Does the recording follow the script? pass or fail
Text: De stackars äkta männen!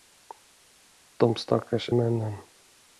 fail